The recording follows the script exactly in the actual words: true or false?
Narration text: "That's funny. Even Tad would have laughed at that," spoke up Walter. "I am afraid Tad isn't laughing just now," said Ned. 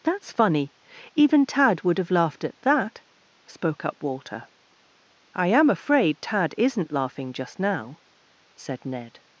true